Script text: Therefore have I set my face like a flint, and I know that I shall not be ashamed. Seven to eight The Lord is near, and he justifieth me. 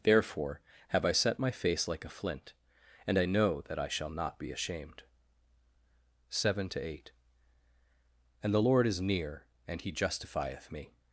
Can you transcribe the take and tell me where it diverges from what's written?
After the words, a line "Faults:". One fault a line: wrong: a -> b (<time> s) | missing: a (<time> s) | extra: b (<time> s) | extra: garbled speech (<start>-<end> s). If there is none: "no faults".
Therefore have I set my face like a flint, and I know that I shall not be ashamed. Seven to eight And the Lord is near, and he justifieth me.
Faults:
extra: And (8.4 s)